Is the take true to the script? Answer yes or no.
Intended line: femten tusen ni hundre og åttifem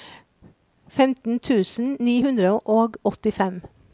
yes